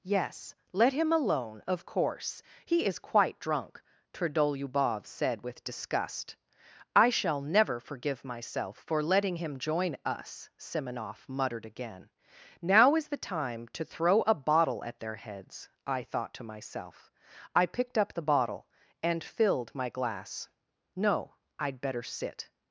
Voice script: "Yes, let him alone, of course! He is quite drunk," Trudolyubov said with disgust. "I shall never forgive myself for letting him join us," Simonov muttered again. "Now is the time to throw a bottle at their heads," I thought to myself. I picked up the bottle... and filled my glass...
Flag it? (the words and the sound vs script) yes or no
yes